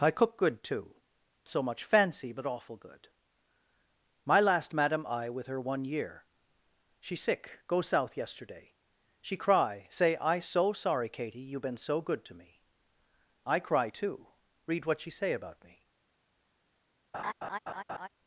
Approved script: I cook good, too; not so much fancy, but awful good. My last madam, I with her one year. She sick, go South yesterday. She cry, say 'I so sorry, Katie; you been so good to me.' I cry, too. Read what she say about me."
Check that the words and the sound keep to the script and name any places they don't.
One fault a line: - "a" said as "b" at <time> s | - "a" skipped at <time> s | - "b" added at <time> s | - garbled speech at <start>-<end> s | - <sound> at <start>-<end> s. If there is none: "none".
- "not" skipped at 0.9 s
- laugh at 17.1-18.1 s